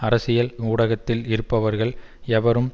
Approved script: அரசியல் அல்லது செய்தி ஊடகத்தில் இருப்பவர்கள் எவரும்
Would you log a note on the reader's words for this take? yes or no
yes